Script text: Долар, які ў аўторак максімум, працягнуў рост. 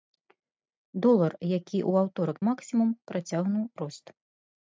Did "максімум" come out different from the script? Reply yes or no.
no